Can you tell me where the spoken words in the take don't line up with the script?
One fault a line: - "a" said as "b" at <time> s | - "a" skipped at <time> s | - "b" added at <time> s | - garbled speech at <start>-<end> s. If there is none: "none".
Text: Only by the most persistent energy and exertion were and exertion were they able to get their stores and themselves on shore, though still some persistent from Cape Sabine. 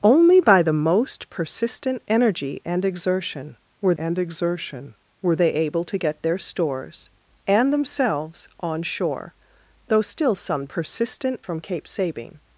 none